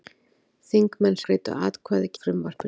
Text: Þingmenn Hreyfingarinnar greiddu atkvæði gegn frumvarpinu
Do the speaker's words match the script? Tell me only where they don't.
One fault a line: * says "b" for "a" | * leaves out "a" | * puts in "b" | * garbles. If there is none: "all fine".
* leaves out "Hreyfingarinnar"
* leaves out "gegn"